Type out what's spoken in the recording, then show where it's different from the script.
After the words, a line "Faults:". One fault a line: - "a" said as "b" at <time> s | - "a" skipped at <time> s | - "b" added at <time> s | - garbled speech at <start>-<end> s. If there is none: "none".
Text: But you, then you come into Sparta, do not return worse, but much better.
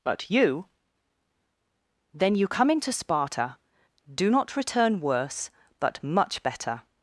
But you, then you come into Sparta, do not return worse, but much better.
Faults:
none